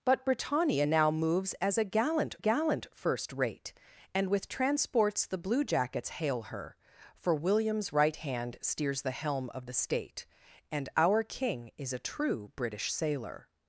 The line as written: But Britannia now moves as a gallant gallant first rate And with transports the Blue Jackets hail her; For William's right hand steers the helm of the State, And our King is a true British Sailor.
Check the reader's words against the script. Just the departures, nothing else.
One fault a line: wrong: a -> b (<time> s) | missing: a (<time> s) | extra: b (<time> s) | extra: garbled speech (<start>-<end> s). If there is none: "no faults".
no faults